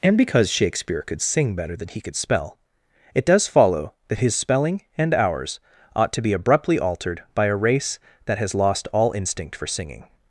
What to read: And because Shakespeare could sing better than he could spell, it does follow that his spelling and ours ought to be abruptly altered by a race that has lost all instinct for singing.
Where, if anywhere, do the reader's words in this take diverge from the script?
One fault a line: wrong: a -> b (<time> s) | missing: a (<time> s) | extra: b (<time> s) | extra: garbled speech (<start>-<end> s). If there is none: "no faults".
no faults